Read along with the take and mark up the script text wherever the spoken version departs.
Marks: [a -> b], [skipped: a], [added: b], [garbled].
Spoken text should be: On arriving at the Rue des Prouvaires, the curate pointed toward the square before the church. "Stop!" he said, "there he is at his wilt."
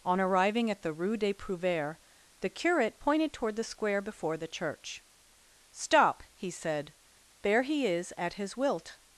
On arriving at the Rue des Prouvaires, the curate pointed toward the square before the church. "Stop!" he said, "there he is at his wilt."